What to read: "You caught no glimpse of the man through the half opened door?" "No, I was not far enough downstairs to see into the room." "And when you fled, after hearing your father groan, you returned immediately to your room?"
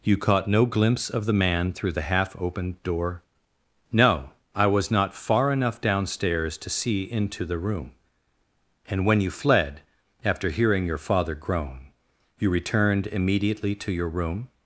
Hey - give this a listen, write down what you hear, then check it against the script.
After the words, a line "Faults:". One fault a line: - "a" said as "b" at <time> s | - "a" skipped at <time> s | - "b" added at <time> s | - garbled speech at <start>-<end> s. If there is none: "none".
"You caught no glimpse of the man through the half opened door?" "No, I was not far enough downstairs to see into the room." "And when you fled, after hearing your father groan, you returned immediately to your room?"
Faults:
none